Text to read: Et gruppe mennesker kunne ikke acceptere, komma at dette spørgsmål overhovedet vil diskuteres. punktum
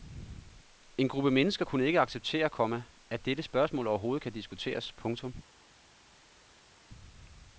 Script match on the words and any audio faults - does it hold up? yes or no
no